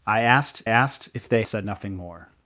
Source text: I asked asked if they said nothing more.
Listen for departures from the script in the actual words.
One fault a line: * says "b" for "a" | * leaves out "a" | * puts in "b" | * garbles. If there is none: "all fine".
all fine